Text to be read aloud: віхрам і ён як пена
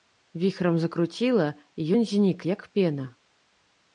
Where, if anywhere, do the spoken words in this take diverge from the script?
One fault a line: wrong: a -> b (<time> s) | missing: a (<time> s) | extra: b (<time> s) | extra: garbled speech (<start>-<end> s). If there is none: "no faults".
extra: закруціла (0.8 s)
extra: знік (2.0 s)